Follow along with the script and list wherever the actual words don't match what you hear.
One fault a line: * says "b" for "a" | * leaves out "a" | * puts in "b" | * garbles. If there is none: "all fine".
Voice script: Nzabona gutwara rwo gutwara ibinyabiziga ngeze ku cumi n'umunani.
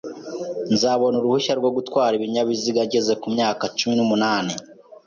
* says "uruhushya" for "gutwara"
* puts in "myaka"